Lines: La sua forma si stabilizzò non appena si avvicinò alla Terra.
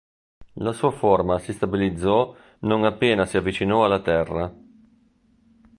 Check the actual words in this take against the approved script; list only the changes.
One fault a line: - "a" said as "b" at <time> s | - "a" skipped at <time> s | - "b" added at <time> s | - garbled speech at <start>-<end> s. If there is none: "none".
none